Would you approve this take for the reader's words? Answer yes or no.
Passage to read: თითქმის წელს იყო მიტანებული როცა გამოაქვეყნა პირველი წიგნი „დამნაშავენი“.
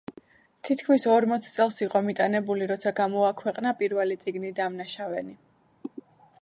no